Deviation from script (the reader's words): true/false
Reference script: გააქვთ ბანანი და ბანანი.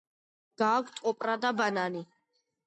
true